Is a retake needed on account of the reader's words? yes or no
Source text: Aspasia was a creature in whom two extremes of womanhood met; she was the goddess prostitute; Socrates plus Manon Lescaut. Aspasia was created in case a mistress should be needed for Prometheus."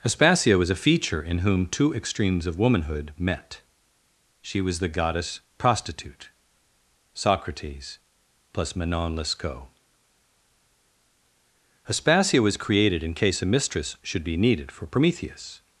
yes